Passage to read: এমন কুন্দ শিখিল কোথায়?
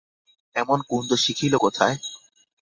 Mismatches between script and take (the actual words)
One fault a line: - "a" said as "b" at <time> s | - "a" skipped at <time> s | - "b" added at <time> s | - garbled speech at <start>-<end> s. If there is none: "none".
none